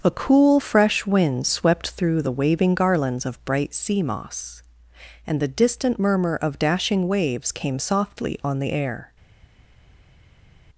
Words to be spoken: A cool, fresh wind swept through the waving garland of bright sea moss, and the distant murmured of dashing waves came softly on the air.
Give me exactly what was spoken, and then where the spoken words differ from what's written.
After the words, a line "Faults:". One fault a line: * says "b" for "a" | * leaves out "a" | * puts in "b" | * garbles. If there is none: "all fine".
A cool, fresh wind swept through the waving garlands of bright sea moss, and the distant murmur of dashing waves came softly on the air.
Faults:
* says "garlands" for "garland"
* says "murmur" for "murmured"